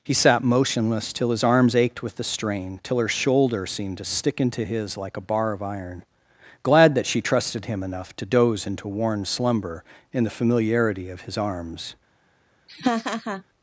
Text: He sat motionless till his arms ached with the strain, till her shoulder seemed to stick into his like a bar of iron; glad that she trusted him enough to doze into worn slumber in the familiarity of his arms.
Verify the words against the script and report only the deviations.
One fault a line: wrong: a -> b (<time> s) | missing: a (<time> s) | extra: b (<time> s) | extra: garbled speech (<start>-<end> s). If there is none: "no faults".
no faults